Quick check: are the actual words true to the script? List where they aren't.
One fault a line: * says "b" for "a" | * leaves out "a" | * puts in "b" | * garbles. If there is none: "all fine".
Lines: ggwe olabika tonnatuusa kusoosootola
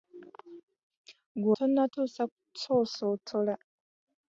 * leaves out "olabika"